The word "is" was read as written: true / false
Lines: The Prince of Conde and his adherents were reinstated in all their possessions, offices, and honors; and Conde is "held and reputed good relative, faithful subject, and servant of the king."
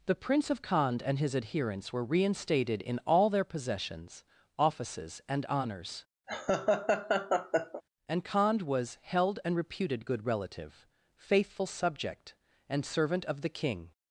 false